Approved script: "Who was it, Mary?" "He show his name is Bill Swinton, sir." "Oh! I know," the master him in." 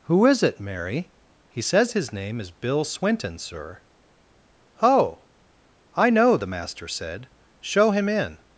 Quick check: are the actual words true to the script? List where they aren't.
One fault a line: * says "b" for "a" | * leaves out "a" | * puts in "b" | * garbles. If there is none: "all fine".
* says "is" for "was"
* says "says" for "show"
* puts in "said show"